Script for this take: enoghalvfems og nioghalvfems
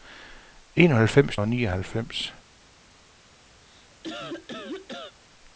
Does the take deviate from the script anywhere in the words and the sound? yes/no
yes